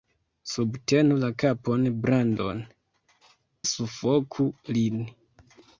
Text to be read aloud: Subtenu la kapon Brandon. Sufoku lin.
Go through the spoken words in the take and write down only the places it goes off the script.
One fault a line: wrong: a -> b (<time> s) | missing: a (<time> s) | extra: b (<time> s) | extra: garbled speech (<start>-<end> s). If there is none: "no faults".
no faults